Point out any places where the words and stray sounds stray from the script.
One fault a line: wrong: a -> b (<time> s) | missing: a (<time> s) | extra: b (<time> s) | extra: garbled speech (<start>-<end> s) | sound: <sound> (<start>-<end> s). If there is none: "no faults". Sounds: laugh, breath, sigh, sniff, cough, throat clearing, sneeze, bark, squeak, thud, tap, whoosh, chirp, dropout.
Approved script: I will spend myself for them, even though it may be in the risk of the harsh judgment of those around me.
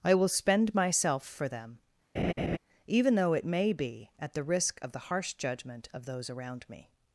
sound: laugh (2.2-2.6 s)
wrong: in -> at (4.2 s)